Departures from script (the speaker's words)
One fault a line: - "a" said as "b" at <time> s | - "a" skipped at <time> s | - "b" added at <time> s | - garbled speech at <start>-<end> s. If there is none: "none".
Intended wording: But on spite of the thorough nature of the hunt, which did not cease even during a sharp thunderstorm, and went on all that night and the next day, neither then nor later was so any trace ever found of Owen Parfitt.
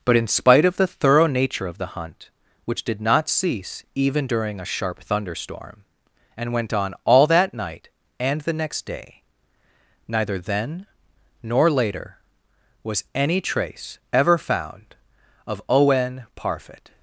- "on" said as "in" at 0.2 s
- "so" skipped at 13.0 s